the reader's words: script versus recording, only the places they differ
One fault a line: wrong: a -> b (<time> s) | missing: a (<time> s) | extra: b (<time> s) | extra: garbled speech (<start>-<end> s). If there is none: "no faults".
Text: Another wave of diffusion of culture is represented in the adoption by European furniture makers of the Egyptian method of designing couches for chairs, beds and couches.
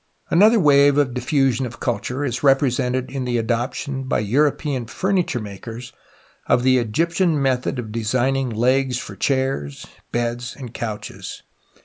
wrong: couches -> legs (8.5 s)